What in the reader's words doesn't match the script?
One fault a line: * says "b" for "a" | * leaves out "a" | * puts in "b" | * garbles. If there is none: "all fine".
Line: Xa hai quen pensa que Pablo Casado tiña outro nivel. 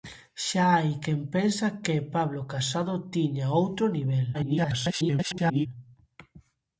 * garbles